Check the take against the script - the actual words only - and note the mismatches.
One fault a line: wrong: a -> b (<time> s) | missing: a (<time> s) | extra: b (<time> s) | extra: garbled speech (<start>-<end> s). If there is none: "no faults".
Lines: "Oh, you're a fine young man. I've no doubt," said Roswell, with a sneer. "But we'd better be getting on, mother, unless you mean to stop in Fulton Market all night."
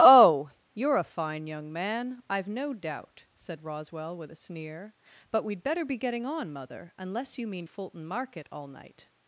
missing: to stop in (7.7 s)